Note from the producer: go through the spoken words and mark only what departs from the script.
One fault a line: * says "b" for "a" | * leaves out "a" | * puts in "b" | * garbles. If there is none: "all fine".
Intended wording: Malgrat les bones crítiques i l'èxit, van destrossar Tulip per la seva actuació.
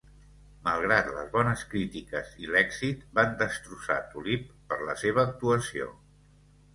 all fine